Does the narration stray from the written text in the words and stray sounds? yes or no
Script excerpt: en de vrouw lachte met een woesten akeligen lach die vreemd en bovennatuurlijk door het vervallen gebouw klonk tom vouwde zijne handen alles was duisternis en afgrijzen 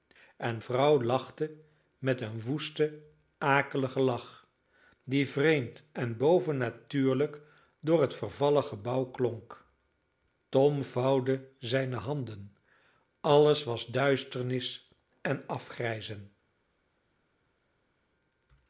yes